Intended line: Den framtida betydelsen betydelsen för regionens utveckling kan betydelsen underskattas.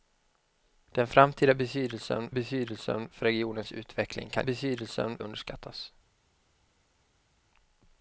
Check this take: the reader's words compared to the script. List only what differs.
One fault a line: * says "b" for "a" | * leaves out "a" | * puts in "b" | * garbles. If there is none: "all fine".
all fine